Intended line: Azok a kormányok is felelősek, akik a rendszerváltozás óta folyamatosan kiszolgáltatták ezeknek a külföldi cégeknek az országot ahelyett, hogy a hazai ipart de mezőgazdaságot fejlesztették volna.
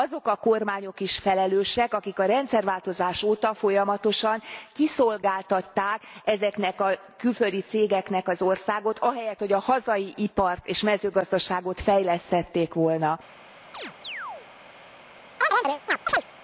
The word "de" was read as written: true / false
false